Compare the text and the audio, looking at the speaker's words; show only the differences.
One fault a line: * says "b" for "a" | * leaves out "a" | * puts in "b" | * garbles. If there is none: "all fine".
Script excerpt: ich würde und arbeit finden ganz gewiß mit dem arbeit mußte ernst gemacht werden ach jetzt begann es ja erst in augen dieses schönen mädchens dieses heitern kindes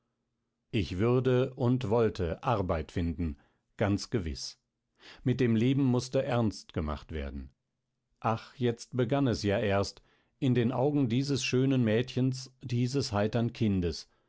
* puts in "wollte"
* says "leben" for "arbeit"
* puts in "den"